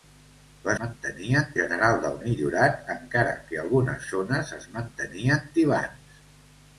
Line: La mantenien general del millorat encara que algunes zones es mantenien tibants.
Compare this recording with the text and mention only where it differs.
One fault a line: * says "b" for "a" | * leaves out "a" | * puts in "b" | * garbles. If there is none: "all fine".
all fine